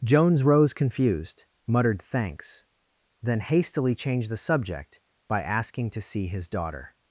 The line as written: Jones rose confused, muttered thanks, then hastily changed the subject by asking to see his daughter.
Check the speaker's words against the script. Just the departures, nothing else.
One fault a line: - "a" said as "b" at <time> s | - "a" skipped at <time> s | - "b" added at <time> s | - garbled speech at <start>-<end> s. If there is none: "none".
none